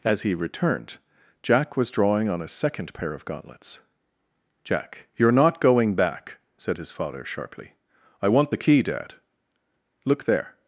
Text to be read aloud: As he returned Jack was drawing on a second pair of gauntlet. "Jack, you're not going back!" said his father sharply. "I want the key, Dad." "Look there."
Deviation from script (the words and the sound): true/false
true